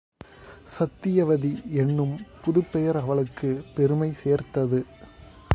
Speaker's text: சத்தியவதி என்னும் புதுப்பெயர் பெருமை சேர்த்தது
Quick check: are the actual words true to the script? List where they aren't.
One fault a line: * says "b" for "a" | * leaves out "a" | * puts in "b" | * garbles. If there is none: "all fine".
* puts in "அவளுக்குப்"